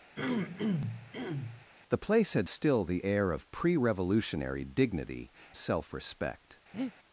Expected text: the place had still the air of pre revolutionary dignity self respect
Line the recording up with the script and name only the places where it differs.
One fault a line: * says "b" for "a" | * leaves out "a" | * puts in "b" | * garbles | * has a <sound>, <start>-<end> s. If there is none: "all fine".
* has a throat clearing, 0.1-1.7 s
* has a breath, 6.7-6.9 s